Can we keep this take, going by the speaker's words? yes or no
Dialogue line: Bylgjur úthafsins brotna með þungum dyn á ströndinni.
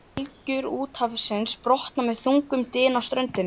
yes